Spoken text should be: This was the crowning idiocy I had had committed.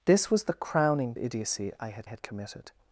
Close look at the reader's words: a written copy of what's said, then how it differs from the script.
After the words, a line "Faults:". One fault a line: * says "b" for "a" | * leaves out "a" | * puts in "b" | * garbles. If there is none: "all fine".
This was the crowning idiocy I had had committed.
Faults:
all fine